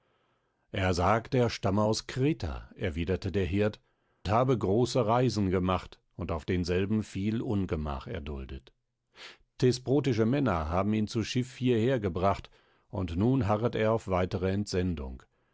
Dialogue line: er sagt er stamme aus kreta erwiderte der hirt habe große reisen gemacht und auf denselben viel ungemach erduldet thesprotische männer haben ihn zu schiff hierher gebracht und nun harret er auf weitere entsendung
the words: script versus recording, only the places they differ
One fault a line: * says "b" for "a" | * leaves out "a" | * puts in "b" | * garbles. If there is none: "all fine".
all fine